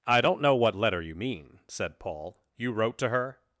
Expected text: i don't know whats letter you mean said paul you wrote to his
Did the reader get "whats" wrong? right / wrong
wrong